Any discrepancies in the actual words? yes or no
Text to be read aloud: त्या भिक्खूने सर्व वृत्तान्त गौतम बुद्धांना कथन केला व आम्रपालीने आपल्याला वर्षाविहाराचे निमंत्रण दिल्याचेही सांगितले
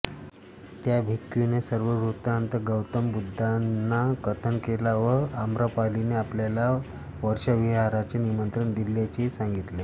no